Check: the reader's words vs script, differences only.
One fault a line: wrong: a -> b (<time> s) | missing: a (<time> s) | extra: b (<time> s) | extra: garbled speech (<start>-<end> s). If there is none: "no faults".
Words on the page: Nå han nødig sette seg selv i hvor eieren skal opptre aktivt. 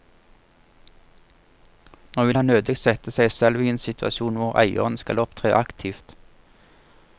extra: vil (2.2 s)
extra: en situasjon (3.7 s)